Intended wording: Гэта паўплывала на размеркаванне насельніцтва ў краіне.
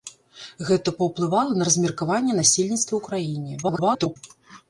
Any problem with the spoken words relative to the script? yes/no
yes